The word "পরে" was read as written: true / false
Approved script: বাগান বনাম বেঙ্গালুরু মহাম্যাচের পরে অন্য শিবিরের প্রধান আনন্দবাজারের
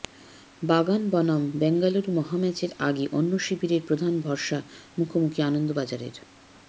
false